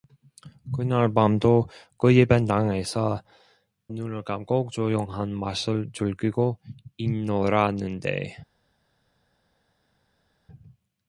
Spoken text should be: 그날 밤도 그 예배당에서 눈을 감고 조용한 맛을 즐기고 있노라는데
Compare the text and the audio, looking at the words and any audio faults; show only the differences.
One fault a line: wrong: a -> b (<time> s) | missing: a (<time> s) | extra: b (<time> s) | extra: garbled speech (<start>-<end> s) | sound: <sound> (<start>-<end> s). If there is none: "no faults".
no faults